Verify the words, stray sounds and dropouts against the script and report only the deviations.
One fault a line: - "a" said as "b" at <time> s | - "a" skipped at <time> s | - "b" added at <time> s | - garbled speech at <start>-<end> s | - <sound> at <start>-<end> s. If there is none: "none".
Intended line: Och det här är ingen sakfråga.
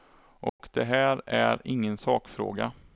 - dropout at 0.5-0.6 s